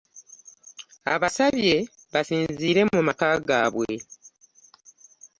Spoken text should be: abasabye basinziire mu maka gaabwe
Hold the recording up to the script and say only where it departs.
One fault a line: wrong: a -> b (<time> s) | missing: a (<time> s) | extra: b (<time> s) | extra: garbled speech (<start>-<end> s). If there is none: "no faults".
no faults